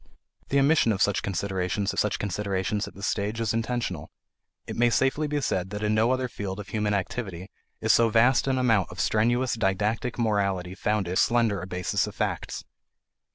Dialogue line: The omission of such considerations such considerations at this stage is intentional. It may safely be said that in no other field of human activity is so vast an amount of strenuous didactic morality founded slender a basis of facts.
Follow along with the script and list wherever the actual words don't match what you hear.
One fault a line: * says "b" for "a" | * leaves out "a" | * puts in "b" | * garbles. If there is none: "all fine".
all fine